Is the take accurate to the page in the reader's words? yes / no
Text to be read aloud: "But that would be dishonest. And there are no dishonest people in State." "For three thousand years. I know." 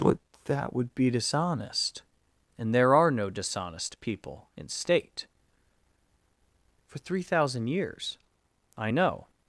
yes